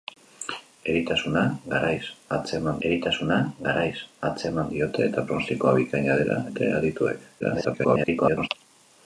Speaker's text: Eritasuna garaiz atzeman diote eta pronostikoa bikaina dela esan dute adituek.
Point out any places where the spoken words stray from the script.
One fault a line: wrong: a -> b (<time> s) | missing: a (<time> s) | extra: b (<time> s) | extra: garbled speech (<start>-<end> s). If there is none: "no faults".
extra: eritasuna garaiz atzeman (2.9 s)
missing: esan (6.4 s)
extra: garbled speech (7.4-8.5 s)